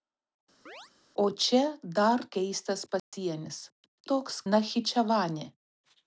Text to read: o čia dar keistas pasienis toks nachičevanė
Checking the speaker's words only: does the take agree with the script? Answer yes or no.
yes